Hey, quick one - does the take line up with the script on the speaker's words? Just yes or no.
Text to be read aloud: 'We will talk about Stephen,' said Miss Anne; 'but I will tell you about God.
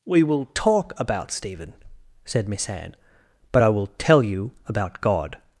yes